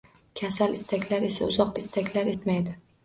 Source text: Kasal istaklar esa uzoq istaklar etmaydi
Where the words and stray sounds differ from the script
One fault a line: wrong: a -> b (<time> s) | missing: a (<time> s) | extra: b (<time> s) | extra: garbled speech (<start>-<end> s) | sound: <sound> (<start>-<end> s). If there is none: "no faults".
no faults